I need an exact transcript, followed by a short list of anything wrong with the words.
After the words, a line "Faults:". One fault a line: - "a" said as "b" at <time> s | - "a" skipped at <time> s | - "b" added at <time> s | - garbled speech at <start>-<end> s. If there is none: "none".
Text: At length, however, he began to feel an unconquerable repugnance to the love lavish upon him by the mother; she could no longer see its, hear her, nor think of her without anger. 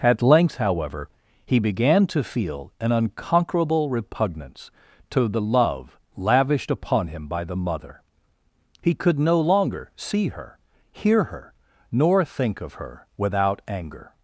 At length, however, he began to feel an unconquerable repugnance to the love lavished upon him by the mother; he could no longer see her, hear her, nor think of her without anger.
Faults:
- "lavish" said as "lavished" at 6.2 s
- "she" said as "he" at 8.8 s
- "its" said as "her" at 10.3 s